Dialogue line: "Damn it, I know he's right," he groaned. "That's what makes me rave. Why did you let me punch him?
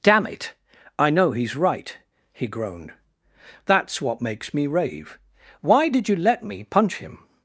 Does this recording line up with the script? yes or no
yes